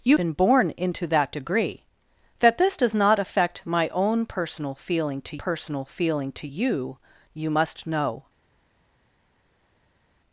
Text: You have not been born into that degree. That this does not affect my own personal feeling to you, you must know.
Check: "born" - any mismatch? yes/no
no